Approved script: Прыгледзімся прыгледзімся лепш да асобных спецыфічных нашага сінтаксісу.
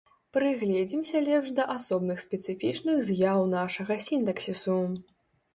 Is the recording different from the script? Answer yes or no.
yes